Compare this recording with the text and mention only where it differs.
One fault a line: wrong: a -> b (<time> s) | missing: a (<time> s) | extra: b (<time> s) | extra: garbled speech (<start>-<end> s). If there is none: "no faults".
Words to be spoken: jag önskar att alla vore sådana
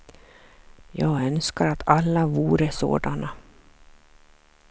no faults